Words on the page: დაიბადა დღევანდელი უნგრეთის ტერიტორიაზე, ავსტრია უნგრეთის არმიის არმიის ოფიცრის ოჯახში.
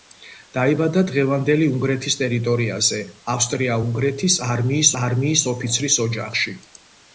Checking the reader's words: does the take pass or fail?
pass